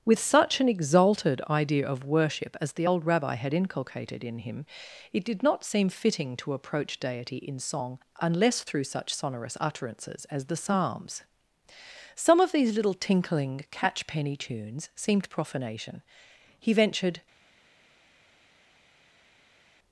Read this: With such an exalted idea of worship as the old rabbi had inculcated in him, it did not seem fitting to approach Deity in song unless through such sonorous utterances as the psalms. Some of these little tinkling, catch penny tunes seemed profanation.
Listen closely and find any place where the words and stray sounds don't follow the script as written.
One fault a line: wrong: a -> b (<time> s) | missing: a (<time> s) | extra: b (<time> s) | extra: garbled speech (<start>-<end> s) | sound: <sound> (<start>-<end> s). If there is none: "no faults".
extra: He ventured (16.6 s)